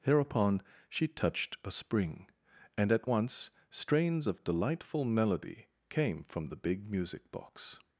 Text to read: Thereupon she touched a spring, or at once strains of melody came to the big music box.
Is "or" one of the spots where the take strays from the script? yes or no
yes